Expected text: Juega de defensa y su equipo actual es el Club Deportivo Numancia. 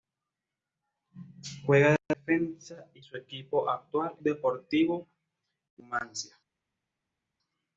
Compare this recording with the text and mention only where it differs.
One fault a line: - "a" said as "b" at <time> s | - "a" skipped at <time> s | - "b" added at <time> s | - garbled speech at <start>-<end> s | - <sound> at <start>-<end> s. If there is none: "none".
- "es el Club" skipped at 4.1 s